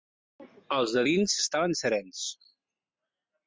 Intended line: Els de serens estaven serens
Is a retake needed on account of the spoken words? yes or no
yes